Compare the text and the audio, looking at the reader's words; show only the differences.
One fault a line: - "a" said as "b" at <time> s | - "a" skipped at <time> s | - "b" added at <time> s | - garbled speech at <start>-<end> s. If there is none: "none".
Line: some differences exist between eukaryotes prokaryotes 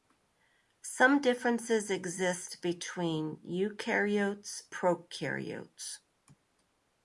none